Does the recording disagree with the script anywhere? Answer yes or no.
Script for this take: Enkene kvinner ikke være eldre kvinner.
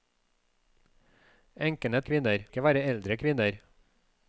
no